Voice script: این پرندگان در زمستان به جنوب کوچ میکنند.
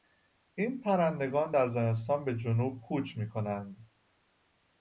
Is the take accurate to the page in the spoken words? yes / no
yes